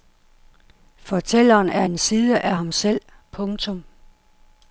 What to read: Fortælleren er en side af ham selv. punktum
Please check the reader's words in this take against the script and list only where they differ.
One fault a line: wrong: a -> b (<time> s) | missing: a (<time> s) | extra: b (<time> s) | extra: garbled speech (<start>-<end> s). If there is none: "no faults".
no faults